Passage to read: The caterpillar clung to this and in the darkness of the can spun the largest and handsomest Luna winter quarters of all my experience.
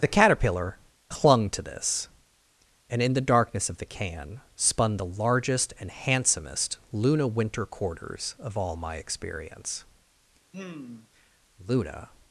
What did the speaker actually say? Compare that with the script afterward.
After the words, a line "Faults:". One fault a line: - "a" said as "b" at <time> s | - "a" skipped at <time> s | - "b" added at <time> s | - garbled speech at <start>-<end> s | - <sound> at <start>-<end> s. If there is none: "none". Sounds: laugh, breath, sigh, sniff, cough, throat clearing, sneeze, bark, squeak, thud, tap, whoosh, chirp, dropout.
The caterpillar clung to this and in the darkness of the can spun the largest and handsomest Luna winter quarters of all my experience. Luna
Faults:
- sigh at 10.5-11.1 s
- "Luna" added at 11.7 s